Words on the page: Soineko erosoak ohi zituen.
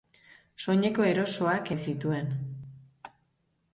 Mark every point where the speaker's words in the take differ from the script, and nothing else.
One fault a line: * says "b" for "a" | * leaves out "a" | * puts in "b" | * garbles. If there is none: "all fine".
all fine